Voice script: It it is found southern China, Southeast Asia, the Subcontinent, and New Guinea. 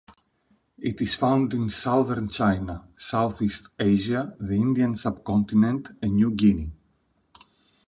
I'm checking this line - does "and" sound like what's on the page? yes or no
yes